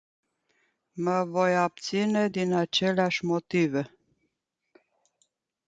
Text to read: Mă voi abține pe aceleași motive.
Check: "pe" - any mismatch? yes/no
yes